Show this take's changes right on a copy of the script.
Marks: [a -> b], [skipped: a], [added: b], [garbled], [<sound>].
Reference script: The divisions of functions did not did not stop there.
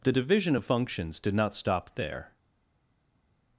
The [divisions -> division] of functions did not [skipped: did not] stop there.